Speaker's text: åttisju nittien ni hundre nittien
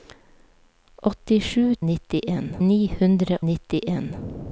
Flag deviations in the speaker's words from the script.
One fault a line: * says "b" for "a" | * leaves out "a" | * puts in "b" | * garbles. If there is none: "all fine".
all fine